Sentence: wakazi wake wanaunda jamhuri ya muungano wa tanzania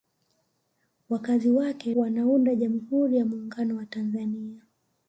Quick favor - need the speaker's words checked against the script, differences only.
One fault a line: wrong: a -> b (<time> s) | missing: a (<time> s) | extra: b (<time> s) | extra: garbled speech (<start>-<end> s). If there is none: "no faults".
no faults